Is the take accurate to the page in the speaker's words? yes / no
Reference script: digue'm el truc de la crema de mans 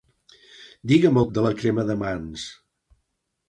no